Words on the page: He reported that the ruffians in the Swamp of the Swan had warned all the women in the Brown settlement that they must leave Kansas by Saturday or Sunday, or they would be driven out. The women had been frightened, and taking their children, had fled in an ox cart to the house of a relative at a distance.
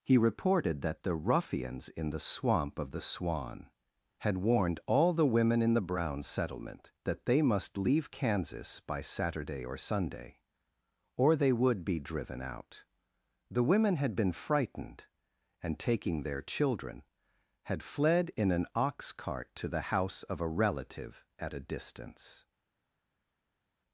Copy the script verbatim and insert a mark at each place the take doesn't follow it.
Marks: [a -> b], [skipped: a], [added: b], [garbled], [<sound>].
He reported that the ruffians in the Swamp of the Swan had warned all the women in the Brown settlement that they must leave Kansas by Saturday or Sunday, or they would be driven out. The women had been frightened, and taking their children, had fled in an ox cart to the house of a relative at a distance.